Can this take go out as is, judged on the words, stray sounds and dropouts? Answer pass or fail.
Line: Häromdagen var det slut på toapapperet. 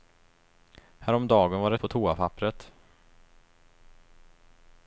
fail